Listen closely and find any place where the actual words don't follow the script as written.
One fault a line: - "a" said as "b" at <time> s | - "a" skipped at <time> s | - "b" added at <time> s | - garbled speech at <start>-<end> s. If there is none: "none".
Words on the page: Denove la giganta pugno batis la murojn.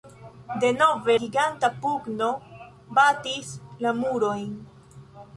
- "la" skipped at 1.2 s